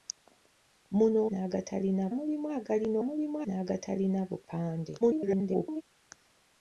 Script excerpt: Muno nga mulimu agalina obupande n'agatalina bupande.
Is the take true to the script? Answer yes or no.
no